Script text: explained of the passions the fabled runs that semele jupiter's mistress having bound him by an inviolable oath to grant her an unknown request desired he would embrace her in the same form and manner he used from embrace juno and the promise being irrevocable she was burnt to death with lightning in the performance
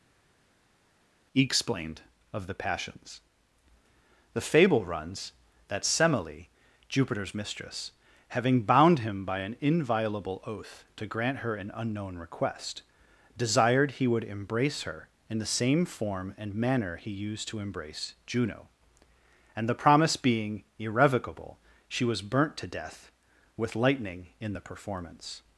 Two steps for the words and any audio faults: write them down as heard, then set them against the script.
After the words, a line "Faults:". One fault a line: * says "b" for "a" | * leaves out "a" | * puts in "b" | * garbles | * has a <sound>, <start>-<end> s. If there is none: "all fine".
explained of the passions the fable runs that semele jupiter's mistress having bound him by an inviolable oath to grant her an unknown request desired he would embrace her in the same form and manner he used to embrace juno and the promise being irrevocable she was burnt to death with lightning in the performance
Faults:
* says "fable" for "fabled"
* says "to" for "from"